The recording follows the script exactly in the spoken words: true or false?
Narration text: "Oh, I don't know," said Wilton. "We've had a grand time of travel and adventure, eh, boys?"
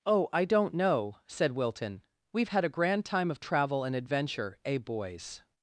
true